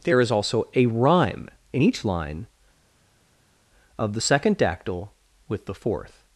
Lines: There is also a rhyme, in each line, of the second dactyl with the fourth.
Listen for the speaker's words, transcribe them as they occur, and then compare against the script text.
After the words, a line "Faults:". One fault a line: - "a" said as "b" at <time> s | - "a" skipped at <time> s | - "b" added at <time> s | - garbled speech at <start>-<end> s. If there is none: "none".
There is also a rhyme, in each line, of the second dactyl with the fourth.
Faults:
none